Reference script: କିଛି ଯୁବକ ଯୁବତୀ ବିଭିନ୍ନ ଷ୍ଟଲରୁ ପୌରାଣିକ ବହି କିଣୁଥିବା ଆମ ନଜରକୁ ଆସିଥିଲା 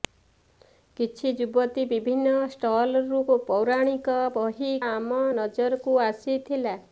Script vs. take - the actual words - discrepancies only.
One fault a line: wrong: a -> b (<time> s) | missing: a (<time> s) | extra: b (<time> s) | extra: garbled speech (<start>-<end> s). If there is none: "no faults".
missing: ଯୁବକ (1.3 s)
missing: କିଣୁଥିବା (4.7 s)